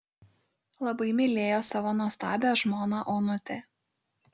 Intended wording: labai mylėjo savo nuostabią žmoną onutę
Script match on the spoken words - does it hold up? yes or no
yes